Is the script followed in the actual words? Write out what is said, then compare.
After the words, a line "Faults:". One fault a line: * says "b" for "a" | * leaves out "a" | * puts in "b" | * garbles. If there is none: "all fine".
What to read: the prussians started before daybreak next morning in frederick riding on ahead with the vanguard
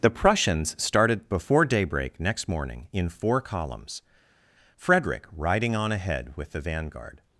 the prussians started before daybreak next morning in four columns frederick riding on ahead with the vanguard
Faults:
* puts in "four columns"